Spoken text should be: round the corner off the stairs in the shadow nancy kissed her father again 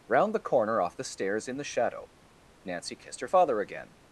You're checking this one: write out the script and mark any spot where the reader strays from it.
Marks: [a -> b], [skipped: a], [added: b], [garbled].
round the corner off the stairs in the shadow nancy kissed her father again